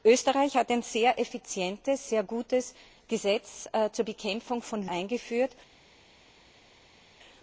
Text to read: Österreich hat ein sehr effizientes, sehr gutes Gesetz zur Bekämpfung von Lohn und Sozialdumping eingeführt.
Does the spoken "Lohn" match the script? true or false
false